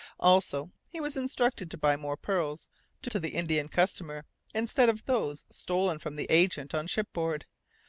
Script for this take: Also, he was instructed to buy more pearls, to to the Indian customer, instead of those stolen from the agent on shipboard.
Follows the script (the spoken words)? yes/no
yes